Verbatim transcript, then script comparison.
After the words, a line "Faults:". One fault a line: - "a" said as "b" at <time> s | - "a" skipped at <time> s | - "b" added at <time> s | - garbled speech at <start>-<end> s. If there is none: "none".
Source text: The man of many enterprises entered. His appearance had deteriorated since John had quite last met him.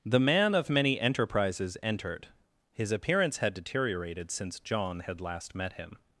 The man of many enterprises entered. His appearance had deteriorated since John had last met him.
Faults:
- "quite" skipped at 5.2 s